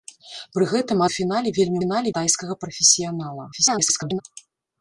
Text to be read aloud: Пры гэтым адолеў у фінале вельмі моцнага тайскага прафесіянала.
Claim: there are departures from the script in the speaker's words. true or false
true